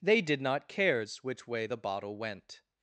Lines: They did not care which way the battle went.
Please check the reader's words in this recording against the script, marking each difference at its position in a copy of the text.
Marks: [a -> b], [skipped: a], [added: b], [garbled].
They did not [care -> cares] which way the [battle -> bottle] went.